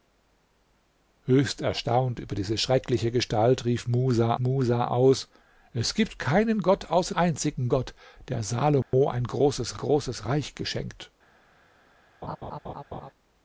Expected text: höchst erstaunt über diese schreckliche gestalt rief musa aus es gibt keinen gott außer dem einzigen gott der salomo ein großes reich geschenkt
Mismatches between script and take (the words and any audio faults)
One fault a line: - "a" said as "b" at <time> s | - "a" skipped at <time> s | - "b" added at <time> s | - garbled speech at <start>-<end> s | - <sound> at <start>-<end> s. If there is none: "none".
- "musa" added at 4.4 s
- "dem" skipped at 7.1 s
- dropout at 8.8-8.9 s
- "großes" added at 9.7 s
- laugh at 12.2-13.1 s